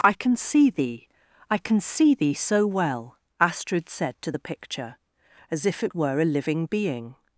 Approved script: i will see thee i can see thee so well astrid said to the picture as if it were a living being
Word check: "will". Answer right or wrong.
wrong